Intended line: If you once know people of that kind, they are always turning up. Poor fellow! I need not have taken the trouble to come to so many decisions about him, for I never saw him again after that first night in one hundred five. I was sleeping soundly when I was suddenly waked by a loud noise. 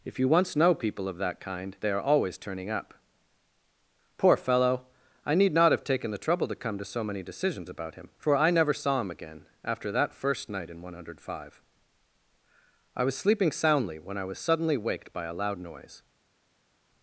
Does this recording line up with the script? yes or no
yes